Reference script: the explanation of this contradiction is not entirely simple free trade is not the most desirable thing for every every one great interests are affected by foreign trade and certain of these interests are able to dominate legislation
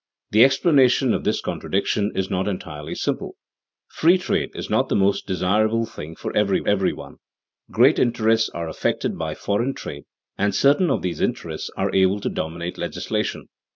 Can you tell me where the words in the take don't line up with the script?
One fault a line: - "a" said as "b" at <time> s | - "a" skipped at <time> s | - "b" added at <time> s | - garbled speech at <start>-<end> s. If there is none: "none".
none